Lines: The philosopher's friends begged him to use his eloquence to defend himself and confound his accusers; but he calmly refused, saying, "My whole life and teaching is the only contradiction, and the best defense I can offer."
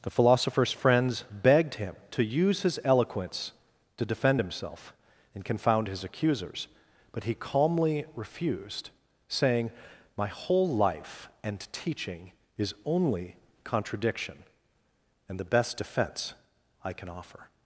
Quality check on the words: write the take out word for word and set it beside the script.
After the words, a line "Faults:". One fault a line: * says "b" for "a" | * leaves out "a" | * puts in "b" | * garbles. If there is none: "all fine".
The philosopher's friends begged him to use his eloquence to defend himself and confound his accusers; but he calmly refused, saying, "My whole life and teaching is only contradiction, and the best defense I can offer."
Faults:
* leaves out "the"